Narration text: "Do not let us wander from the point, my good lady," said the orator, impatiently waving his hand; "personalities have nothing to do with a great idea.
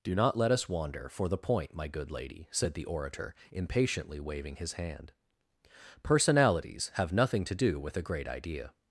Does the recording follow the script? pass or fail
fail